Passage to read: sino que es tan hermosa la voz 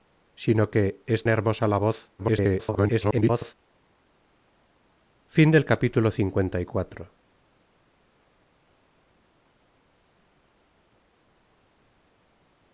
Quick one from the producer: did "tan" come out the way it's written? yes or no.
no